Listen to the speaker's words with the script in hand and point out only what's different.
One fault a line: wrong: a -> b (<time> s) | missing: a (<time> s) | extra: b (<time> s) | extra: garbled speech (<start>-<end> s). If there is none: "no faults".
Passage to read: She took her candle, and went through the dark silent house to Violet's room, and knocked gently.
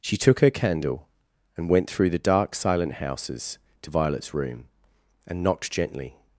wrong: house -> houses (2.9 s)